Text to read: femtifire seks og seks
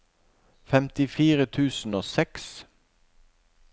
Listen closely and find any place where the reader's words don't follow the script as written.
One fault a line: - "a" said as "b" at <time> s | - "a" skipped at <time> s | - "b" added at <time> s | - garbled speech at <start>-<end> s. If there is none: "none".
- "seks" said as "tusen" at 1.4 s